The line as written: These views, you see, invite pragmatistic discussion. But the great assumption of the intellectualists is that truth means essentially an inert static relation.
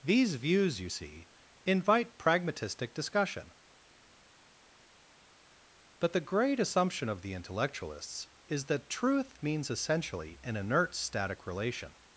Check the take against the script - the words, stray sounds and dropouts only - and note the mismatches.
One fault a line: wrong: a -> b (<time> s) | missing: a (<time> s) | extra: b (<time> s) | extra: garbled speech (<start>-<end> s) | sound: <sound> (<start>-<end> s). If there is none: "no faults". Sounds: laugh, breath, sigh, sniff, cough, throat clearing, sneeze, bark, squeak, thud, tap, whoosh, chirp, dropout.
no faults